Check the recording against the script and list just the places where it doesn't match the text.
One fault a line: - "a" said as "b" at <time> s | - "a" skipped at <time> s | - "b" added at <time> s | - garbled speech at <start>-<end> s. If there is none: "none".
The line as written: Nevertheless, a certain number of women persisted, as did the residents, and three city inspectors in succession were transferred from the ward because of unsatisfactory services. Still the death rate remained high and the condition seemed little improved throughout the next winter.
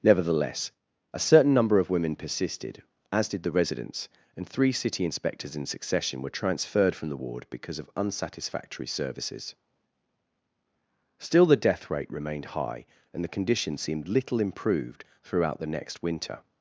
none